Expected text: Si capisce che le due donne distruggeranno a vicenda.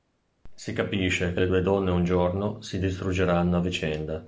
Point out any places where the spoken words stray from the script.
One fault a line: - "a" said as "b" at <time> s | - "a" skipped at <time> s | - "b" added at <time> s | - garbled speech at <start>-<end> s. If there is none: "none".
- "un giorno si" added at 1.9 s